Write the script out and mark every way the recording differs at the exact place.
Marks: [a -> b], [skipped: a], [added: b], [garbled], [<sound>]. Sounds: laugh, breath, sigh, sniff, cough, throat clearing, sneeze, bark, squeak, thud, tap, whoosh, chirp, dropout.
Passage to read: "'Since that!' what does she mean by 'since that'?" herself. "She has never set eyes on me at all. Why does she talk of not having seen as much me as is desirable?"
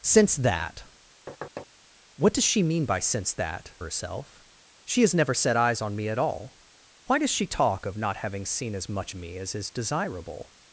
"'Since that!' [thud] what does she mean by 'since that'?" herself. "She has never set eyes on me at all. Why does she talk of not having seen as much me as is desirable?"